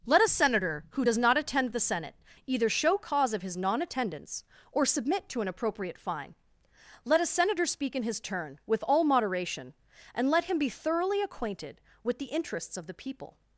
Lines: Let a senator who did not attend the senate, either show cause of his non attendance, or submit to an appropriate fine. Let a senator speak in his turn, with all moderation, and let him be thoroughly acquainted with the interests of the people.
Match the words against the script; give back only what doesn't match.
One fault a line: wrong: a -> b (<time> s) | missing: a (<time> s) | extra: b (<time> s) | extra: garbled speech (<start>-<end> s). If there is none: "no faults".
wrong: did -> does (1.0 s)